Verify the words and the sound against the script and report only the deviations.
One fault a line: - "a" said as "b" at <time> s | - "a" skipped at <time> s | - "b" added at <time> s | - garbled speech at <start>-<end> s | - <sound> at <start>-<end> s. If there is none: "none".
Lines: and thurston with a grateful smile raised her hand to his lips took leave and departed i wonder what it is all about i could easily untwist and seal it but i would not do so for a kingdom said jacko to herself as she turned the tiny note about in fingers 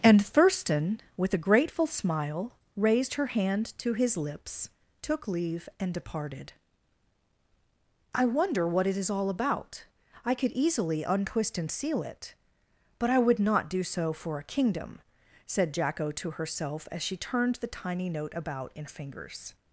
none